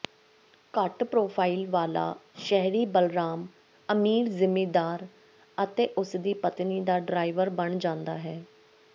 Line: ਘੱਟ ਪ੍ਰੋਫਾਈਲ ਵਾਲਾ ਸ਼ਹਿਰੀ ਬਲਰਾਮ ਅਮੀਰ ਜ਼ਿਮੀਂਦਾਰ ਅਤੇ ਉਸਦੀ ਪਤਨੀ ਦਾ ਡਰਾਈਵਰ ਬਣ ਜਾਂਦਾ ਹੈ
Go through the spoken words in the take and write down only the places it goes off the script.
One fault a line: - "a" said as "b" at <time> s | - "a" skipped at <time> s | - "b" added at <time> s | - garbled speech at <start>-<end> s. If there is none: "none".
none